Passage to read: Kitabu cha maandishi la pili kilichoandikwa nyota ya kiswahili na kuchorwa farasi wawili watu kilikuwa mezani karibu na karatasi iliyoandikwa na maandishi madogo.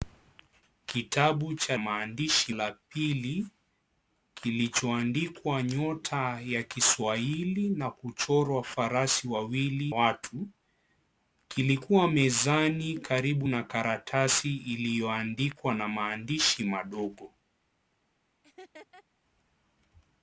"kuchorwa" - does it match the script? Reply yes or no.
yes